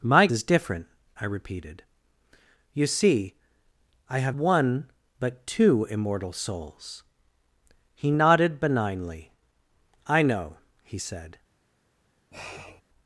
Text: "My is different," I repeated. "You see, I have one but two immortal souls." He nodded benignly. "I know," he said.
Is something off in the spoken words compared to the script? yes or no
no